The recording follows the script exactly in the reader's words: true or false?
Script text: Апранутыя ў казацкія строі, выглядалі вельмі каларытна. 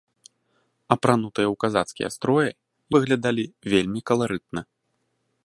true